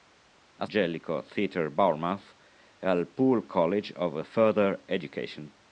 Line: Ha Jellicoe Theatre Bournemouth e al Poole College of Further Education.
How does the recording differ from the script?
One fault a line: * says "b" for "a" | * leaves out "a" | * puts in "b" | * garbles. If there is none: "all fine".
all fine